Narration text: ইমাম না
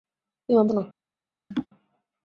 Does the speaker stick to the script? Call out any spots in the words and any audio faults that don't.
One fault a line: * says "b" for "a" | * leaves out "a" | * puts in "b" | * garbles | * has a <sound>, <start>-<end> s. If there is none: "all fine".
* has a laugh, 1.5-1.7 s